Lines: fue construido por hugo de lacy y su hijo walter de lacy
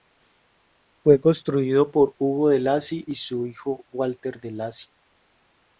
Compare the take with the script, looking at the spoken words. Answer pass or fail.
pass